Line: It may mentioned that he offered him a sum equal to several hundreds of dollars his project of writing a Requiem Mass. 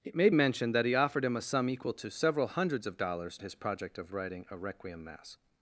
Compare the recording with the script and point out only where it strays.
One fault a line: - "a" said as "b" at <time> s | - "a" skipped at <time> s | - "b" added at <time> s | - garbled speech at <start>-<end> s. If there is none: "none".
none